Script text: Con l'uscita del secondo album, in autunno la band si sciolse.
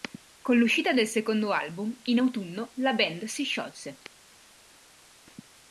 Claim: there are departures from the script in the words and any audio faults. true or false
false